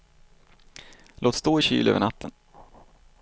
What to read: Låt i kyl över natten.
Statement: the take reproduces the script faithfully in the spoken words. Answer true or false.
false